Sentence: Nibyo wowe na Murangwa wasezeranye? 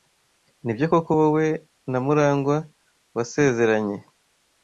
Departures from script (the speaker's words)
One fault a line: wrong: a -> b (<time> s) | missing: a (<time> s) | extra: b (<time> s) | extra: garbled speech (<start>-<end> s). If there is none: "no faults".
extra: koko (0.9 s)